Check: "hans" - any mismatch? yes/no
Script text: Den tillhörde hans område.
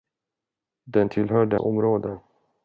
yes